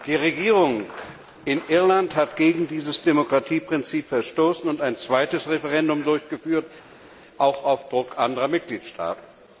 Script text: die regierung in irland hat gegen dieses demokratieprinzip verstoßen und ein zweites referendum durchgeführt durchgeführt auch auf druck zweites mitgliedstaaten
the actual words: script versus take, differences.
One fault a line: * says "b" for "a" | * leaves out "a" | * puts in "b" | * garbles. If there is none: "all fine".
* leaves out "durchgeführt"
* says "anderer" for "zweites"